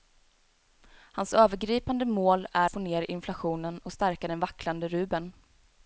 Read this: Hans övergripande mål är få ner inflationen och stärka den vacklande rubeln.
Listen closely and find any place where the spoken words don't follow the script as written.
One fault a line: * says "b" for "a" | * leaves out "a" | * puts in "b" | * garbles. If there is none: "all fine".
all fine